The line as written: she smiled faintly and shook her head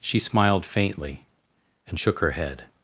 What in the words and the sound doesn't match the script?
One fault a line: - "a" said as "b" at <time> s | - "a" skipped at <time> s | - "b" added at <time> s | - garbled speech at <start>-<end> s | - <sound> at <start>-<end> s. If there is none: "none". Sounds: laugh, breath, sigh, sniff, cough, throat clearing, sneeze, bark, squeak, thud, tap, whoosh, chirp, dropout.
none